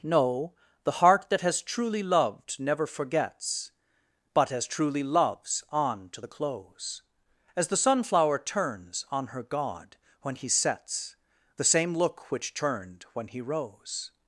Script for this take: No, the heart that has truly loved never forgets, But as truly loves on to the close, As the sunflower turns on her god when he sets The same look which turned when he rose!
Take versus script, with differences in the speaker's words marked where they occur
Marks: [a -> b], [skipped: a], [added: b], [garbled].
No, the heart that has truly loved never forgets, But as truly loves on to the close, As the sunflower turns on her god when he sets The same look which turned when he rose!